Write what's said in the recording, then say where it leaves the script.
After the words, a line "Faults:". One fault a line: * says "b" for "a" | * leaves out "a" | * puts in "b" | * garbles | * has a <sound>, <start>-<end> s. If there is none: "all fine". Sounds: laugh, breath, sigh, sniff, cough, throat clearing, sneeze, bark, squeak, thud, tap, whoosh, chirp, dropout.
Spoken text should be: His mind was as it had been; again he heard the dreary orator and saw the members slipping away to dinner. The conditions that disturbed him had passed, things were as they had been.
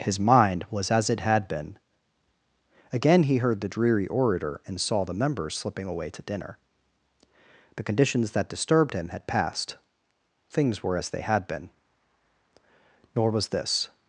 His mind was as it had been; again he heard the dreary orator and saw the members slipping away to dinner. The conditions that disturbed him had passed, things were as they had been. Nor was this
Faults:
* puts in "Nor was this"